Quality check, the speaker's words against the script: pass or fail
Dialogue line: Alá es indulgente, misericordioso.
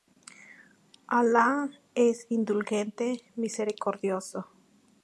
pass